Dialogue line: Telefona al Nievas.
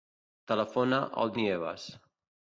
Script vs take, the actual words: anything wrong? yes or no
no